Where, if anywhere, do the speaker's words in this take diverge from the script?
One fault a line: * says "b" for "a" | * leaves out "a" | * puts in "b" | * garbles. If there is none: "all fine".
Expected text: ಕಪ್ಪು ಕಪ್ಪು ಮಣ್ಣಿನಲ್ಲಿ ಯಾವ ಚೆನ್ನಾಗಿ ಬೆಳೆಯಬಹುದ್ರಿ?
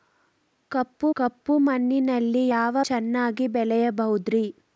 all fine